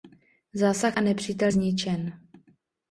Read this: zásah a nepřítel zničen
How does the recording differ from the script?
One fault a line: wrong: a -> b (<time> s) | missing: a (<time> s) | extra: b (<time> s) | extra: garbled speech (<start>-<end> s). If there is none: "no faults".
no faults